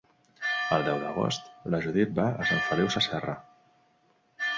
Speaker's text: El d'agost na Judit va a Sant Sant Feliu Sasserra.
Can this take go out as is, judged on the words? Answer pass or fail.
fail